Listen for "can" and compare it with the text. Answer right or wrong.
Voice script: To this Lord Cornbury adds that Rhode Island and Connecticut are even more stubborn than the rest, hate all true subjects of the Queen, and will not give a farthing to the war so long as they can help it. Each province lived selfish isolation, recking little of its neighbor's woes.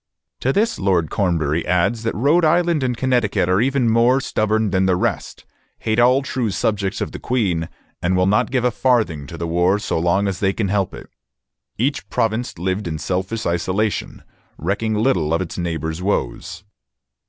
right